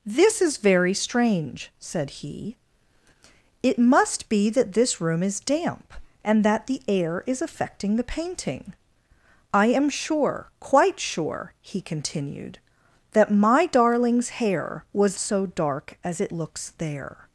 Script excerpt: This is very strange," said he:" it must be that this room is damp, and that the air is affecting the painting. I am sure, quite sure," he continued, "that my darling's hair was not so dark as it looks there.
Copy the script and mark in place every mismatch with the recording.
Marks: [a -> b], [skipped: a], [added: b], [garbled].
This is very strange," said he:" it must be that this room is damp, and that the air is affecting the painting. I am sure, quite sure," he continued, "that my darling's hair was [skipped: not] so dark as it looks there.